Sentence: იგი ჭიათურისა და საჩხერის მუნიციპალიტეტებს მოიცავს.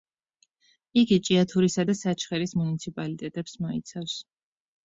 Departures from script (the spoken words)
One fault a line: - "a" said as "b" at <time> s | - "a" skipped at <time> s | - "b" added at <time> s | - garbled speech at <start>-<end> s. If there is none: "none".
none